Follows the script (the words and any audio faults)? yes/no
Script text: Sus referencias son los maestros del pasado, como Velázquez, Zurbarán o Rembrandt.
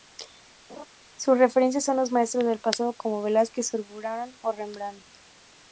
no